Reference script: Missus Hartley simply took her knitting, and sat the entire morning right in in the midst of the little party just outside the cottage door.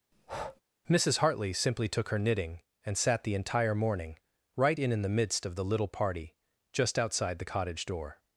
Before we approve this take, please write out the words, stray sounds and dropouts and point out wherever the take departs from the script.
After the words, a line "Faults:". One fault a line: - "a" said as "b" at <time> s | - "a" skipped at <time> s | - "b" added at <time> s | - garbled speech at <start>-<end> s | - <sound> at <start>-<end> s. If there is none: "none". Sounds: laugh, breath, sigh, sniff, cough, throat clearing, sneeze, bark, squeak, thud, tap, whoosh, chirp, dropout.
Missus Hartley simply took her knitting, and sat the entire morning right in in the midst of the little party just outside the cottage door.
Faults:
- breath at 0.1-0.6 s